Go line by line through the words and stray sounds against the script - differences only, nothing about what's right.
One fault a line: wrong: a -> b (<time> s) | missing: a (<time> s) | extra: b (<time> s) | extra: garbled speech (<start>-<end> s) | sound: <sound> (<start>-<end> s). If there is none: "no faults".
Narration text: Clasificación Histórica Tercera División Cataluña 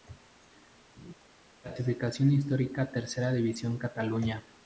sound: laugh (1.0-1.1 s)